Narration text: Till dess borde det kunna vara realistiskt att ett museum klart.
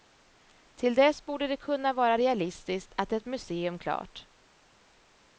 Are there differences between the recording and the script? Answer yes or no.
no